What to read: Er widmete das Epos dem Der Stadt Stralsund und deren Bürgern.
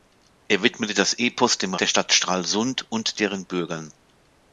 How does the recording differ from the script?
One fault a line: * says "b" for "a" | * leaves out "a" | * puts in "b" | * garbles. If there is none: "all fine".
all fine